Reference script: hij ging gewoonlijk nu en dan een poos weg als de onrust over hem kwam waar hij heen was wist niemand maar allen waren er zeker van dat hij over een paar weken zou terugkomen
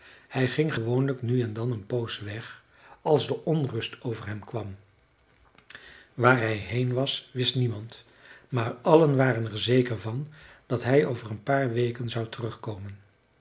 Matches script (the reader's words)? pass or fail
pass